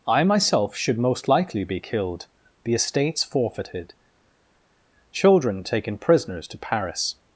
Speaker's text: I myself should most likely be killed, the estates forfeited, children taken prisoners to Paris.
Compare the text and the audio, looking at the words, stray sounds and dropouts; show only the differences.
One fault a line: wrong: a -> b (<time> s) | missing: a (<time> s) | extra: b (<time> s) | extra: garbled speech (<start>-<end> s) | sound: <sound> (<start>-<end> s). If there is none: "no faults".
no faults